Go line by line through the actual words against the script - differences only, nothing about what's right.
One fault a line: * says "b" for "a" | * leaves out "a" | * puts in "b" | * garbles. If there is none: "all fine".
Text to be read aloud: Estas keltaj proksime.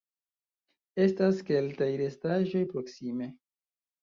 * puts in "restaĵoj"